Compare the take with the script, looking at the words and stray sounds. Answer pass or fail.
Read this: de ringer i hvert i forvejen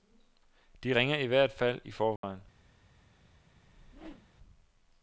fail